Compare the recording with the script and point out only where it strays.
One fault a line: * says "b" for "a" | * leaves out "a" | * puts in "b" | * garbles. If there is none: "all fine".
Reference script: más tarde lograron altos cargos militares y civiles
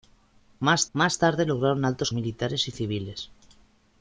* puts in "más"
* leaves out "cargos"